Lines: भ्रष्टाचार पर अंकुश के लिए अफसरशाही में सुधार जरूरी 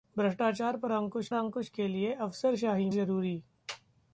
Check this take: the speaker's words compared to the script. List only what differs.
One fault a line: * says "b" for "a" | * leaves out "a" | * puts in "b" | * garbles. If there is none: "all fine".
* puts in "अंकुश"
* leaves out "में सुधार"